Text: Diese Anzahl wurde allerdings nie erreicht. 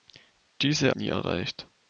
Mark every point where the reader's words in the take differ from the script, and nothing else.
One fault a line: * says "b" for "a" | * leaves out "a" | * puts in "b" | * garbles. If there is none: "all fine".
* leaves out "Anzahl wurde allerdings"